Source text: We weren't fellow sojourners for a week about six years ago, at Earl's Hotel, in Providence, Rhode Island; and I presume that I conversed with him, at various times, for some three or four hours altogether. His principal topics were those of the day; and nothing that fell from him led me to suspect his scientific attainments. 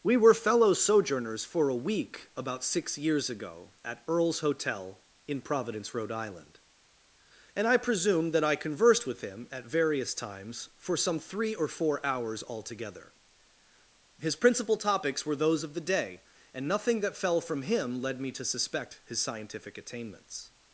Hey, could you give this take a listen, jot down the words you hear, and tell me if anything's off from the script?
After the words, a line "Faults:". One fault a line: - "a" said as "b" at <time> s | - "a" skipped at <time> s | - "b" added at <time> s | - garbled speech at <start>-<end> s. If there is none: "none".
We were fellow sojourners for a week about six years ago, at Earl's Hotel, in Providence, Rhode Island; and I presume that I conversed with him, at various times, for some three or four hours altogether. His principal topics were those of the day; and nothing that fell from him led me to suspect his scientific attainments.
Faults:
- "weren't" said as "were" at 0.2 s